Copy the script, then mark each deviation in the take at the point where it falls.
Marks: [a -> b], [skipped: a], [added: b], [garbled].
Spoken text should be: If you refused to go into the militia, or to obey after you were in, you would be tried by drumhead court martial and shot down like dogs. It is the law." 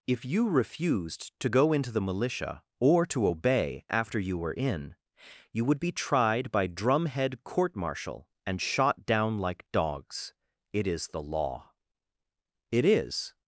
If you refused to go into the militia, or to obey after you were in, you would be tried by drumhead court martial and shot down like dogs. It is the law." [added: It is]